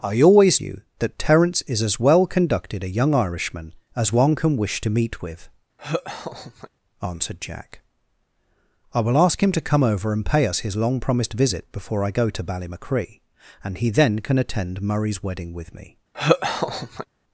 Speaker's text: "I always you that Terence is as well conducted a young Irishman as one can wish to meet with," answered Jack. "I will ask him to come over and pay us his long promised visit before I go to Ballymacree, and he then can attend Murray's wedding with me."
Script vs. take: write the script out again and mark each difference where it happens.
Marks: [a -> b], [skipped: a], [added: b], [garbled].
"I always you that Terence is as well conducted a young Irishman as one can wish to meet with," answered Jack. "I will ask him to come over and pay us his long promised visit before I go to Ballymacree, and he then can attend Murray's wedding with me."